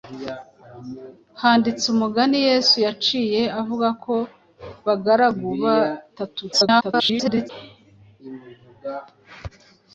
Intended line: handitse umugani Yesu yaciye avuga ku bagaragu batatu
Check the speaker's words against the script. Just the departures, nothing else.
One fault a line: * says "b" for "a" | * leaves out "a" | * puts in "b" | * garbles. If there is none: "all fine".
* garbles